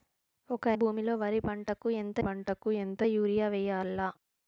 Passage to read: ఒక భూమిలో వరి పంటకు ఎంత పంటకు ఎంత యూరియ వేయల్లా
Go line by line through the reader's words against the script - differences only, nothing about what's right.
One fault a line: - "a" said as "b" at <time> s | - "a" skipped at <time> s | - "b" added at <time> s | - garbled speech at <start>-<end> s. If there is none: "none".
none